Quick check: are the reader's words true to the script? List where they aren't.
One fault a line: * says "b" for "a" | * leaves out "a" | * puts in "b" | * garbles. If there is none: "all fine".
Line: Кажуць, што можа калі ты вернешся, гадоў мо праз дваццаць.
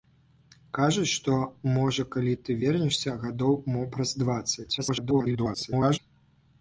* garbles